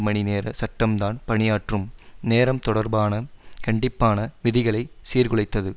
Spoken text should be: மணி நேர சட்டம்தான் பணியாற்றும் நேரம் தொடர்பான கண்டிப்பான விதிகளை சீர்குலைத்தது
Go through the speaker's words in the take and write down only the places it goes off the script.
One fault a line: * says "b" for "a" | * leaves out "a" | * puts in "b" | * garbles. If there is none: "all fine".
all fine